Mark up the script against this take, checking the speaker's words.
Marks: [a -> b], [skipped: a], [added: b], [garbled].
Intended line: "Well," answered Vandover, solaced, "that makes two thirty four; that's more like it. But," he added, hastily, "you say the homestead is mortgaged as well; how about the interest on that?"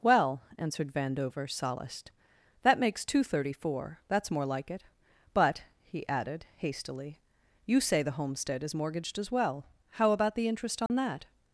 "Well," answered Vandover, solaced, "that makes two thirty four; that's more like it. But," he added, hastily, "you say the homestead is mortgaged as well; how about the interest on that?"